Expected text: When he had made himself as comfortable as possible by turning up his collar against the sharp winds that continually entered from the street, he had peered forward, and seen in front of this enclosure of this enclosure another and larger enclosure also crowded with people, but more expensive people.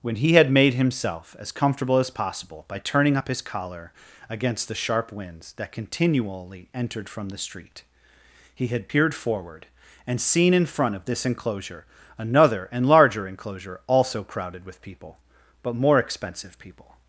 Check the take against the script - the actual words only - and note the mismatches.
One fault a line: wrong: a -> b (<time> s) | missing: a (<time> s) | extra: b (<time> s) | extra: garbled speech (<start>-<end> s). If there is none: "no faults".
missing: of this enclosure (11.8 s)